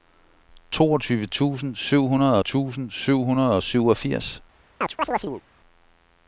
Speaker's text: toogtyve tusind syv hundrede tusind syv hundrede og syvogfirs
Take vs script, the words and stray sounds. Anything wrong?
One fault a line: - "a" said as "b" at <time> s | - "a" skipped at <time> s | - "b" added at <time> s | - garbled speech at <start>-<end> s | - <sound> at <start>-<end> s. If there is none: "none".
- chirp at 4.8-5.4 s